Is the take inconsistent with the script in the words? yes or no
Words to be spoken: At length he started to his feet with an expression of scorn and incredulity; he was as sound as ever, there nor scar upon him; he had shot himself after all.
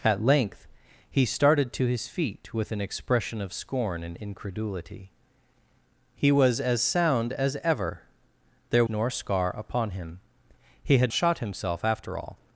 no